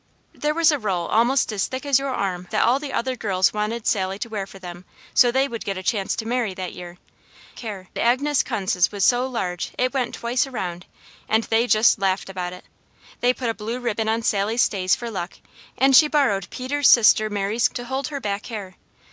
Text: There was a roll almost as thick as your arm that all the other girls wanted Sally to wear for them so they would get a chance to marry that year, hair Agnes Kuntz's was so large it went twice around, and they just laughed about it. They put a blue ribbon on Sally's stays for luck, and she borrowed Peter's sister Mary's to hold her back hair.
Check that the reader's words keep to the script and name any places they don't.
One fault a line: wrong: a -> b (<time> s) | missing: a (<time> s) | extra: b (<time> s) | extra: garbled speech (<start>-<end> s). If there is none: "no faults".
no faults